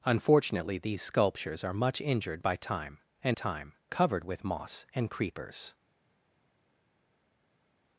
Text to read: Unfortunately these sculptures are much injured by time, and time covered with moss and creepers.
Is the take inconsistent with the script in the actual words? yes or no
no